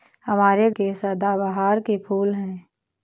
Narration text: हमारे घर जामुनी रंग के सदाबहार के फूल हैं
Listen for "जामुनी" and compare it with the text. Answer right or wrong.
wrong